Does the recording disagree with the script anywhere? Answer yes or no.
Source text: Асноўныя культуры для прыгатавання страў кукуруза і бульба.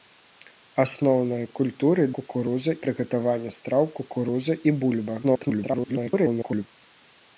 yes